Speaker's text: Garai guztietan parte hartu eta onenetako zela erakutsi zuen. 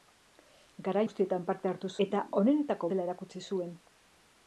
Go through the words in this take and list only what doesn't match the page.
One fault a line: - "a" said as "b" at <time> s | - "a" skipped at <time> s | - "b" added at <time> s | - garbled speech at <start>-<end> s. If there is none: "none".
none